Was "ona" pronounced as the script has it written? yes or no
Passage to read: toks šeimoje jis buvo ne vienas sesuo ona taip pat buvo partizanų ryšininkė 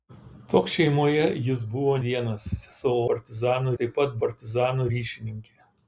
no